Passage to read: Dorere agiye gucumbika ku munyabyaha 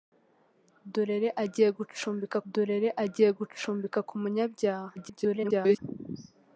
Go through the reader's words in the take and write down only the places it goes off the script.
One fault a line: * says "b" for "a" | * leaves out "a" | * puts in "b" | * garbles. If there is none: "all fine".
* puts in "dorere agiye gucumbika"
* garbles